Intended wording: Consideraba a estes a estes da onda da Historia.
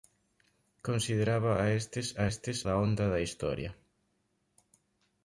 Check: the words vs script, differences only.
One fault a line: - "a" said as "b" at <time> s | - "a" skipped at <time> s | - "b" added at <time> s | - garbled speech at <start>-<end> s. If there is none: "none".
none